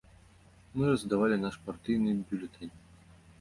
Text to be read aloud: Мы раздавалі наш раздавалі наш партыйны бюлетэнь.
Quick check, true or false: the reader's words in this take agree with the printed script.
false